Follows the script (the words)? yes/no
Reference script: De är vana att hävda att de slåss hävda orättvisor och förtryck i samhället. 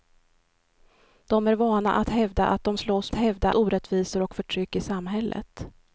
yes